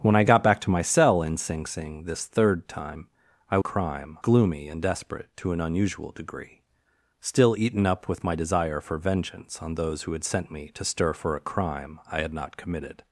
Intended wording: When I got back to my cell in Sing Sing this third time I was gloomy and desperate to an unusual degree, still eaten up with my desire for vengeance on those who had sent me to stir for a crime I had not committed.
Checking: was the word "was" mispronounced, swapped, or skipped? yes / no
yes